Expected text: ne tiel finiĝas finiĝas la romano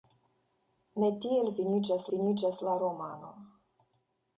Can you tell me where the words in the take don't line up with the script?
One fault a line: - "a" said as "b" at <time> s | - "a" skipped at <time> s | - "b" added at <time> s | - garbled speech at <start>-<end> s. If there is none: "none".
none